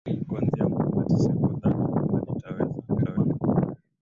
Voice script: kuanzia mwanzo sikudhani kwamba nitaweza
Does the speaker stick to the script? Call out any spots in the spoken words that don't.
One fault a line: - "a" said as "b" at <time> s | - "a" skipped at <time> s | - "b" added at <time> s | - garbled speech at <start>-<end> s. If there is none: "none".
- "mwanzo" said as "kwamba" at 0.7 s
- garbled speech at 2.9-3.4 s